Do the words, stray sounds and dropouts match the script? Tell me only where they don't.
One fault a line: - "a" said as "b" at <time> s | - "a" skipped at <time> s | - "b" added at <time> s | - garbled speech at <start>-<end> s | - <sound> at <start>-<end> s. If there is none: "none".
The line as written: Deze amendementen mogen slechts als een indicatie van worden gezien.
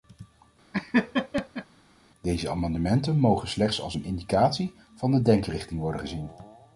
- laugh at 0.7-1.7 s
- "de denkrichting" added at 5.1 s